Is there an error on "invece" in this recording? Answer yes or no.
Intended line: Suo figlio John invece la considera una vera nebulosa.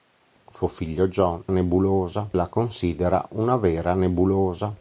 yes